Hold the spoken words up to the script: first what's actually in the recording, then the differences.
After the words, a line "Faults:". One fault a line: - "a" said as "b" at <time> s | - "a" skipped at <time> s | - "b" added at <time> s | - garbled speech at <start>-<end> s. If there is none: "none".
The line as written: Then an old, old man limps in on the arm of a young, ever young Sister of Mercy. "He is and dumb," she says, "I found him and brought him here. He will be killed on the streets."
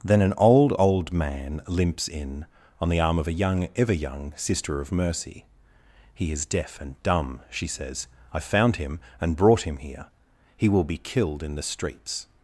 Then an old, old man limps in on the arm of a young, ever young Sister of Mercy. "He is deaf and dumb," she says, "I found him and brought him here. He will be killed in the streets."
Faults:
- "deaf" added at 6.5 s
- "on" said as "in" at 11.4 s